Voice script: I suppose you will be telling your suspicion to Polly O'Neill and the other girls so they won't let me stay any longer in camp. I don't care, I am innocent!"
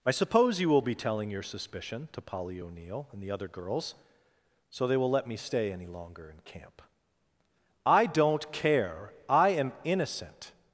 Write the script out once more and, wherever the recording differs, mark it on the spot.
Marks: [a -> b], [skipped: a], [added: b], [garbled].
I suppose you will be telling your suspicion to Polly O'Neill and the other girls so they [won't -> will] let me stay any longer in camp. I don't care, I am innocent!"